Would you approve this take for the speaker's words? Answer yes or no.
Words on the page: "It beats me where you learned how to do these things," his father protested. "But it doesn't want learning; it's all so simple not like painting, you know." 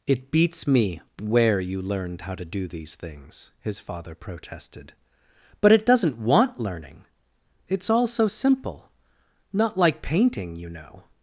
yes